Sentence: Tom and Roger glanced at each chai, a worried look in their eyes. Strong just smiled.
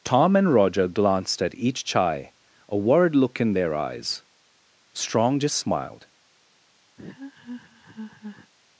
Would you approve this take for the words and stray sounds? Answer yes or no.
no